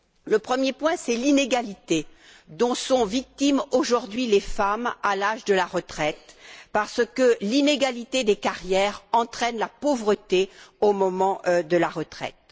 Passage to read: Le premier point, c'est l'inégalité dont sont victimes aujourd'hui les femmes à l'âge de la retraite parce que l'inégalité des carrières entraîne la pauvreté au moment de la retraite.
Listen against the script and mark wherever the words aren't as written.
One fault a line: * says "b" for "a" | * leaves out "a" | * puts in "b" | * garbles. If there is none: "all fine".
all fine